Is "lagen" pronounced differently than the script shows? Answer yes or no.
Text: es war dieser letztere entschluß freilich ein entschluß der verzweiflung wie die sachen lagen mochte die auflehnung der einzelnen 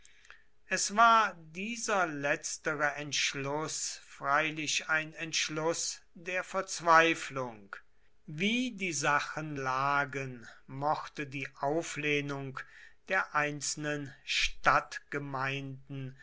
no